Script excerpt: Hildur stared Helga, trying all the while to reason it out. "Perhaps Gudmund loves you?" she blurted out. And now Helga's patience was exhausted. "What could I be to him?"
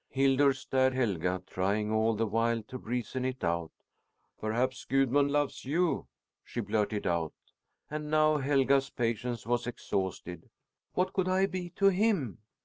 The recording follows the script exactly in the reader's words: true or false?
true